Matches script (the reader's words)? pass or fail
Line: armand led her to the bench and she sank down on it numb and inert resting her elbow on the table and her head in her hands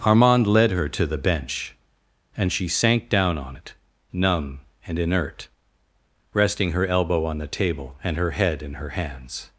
pass